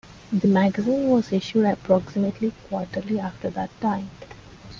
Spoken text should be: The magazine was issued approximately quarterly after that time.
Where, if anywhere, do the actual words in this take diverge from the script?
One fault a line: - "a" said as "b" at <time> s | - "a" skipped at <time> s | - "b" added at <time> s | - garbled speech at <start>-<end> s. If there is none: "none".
none